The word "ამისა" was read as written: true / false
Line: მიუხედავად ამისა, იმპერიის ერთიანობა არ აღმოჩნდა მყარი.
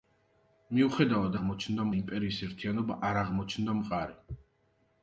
false